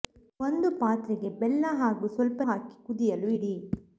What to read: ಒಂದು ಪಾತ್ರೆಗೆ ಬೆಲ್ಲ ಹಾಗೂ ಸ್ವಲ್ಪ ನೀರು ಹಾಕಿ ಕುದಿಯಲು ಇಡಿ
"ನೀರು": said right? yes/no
no